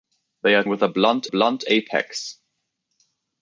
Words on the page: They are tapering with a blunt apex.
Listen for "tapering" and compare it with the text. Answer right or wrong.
wrong